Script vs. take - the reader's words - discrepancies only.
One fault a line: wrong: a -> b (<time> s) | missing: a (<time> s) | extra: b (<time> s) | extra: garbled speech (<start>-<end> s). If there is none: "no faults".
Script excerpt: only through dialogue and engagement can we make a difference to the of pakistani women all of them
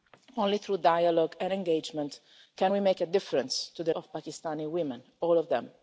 no faults